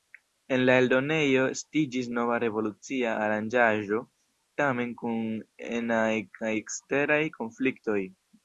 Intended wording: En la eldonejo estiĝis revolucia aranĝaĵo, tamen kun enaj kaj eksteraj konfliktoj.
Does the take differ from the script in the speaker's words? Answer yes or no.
yes